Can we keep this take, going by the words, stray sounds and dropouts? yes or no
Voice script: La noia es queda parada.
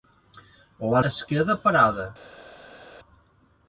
no